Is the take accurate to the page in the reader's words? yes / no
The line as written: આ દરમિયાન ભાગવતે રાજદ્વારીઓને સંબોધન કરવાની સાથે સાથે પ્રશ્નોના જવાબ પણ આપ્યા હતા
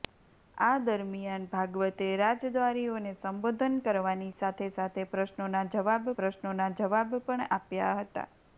no